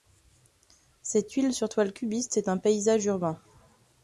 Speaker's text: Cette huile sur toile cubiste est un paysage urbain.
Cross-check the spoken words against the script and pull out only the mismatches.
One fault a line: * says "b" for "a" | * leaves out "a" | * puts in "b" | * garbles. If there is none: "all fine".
all fine